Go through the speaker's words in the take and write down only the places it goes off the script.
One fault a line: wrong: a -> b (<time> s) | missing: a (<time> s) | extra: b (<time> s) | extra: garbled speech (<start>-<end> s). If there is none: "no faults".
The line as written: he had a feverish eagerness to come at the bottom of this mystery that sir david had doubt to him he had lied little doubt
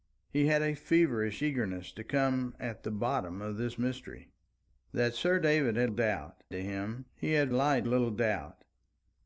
no faults